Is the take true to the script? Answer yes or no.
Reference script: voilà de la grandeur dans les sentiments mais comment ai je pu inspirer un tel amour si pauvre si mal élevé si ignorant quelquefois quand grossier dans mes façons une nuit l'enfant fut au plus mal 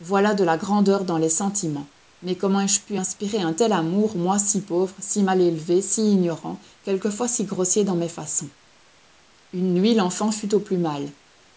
no